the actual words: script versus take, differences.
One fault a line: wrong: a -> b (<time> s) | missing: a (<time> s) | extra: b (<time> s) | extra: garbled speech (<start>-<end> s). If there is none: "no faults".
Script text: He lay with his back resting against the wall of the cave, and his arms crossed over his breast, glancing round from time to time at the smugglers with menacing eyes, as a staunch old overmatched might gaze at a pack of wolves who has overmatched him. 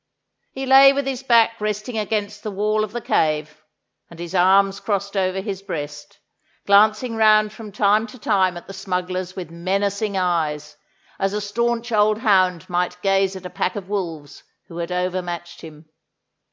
wrong: overmatched -> hound (12.2 s)
wrong: has -> had (14.8 s)